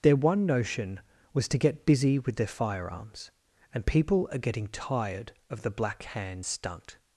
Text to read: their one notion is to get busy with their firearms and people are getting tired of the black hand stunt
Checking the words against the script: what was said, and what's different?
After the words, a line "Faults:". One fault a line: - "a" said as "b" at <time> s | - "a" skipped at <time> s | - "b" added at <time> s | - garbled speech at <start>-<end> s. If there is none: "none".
their one notion was to get busy with their firearms and people are getting tired of the black hand stunt
Faults:
- "is" said as "was" at 1.3 s